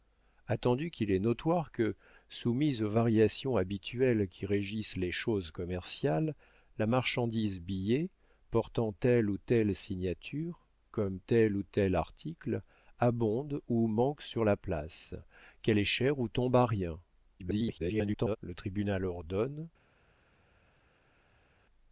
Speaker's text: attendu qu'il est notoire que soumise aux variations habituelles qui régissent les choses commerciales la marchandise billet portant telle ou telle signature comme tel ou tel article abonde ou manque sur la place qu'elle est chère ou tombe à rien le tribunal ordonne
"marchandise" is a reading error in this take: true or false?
false